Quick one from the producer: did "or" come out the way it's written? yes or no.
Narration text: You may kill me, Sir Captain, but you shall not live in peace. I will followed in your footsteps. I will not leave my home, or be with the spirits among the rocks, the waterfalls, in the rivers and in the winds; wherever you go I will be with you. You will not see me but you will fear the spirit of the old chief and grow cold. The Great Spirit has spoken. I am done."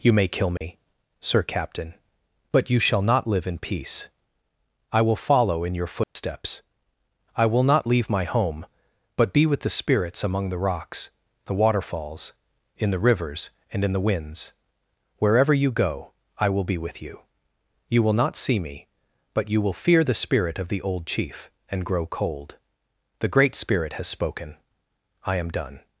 no